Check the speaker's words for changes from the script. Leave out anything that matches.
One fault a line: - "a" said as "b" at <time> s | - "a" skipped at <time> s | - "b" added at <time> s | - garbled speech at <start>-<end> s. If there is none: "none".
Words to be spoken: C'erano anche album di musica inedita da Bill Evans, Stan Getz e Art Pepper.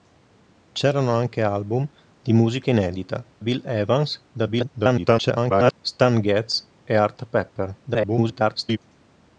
- "da" skipped at 3.2 s
- garbled speech at 4.3-5.7 s
- garbled speech at 7.8-8.8 s